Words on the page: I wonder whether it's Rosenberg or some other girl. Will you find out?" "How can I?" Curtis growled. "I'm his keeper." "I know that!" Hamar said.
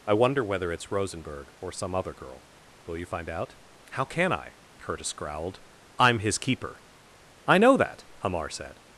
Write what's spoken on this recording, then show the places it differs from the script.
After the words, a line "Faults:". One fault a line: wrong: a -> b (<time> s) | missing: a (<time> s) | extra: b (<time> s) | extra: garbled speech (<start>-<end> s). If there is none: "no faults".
I wonder whether it's Rosenberg or some other girl. Will you find out?" "How can I?" Curtis growled. "I'm his keeper." "I know that!" Hamar said.
Faults:
no faults